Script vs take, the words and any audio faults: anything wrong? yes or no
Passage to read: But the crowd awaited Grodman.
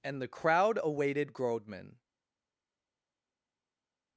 yes